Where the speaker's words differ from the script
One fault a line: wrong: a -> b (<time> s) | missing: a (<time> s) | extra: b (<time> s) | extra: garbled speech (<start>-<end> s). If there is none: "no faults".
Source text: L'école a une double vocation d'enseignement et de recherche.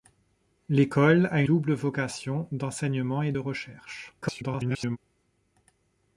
missing: une (1.4 s)
extra: garbled speech (4.2-5.0 s)